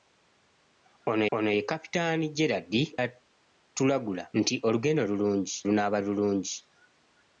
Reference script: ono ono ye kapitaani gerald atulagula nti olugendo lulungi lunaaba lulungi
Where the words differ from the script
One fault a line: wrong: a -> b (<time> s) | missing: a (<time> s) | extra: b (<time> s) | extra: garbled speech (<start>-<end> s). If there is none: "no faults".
no faults